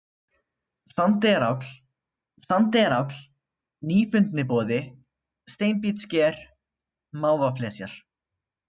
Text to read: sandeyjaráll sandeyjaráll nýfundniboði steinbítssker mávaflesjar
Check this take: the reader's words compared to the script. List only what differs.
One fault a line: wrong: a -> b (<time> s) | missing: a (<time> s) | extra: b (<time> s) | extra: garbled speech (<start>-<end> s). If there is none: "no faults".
no faults